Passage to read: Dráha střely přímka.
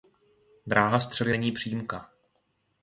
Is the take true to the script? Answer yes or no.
no